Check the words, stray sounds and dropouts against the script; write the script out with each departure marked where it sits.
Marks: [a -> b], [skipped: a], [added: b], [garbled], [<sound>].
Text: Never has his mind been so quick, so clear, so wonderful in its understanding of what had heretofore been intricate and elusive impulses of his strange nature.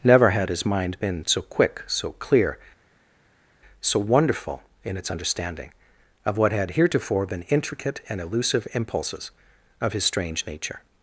Never [has -> had] his mind been so quick, so clear, so wonderful in its understanding of what had heretofore been intricate and elusive impulses of his strange nature.